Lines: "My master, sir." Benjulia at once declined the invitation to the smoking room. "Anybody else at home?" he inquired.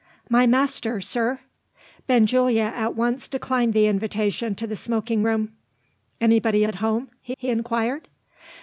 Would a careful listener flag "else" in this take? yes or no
yes